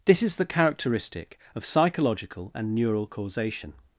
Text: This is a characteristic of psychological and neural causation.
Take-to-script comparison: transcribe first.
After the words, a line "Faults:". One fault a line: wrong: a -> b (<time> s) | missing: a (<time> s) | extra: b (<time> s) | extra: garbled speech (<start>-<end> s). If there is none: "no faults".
This is the characteristic of psychological and neural causation.
Faults:
wrong: a -> the (0.4 s)